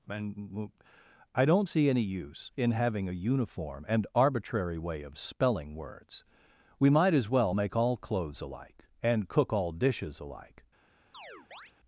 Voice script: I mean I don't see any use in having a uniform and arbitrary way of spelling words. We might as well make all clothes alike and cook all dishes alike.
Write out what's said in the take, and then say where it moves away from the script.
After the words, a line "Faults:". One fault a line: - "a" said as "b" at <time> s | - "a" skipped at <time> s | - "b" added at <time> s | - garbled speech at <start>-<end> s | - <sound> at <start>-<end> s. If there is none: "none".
and I don't see any use in having a uniform and arbitrary way of spelling words. We might as well make all clothes alike and cook all dishes alike.
Faults:
- "I mean" said as "and" at 0.1 s
- chirp at 11.1-11.7 s